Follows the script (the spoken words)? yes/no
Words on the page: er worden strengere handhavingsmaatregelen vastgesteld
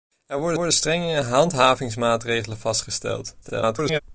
no